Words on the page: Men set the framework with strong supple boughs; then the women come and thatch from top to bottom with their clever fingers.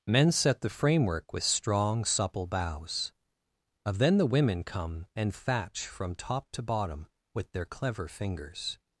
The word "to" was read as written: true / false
true